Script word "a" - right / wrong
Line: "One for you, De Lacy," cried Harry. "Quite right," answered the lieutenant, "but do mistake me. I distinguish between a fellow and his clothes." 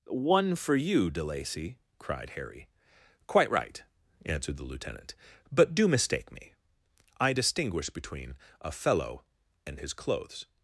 right